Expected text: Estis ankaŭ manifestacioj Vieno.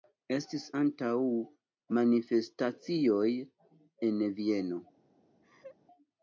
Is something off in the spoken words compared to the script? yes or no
yes